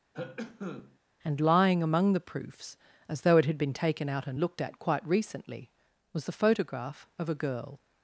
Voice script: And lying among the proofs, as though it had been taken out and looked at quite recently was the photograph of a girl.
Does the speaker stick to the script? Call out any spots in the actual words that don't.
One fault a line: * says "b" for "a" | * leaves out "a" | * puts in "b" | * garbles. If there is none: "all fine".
all fine